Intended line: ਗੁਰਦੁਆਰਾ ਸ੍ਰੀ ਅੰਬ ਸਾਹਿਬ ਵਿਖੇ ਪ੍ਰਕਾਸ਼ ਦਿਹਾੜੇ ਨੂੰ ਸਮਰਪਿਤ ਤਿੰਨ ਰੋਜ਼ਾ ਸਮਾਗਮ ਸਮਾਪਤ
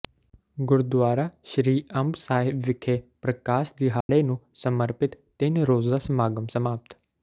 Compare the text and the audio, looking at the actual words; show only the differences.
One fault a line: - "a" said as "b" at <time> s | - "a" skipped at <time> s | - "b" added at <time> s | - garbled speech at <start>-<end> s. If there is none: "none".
none